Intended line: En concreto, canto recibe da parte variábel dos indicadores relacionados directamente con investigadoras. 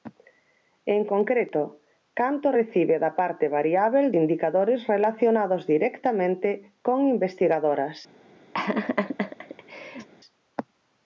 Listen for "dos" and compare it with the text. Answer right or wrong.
wrong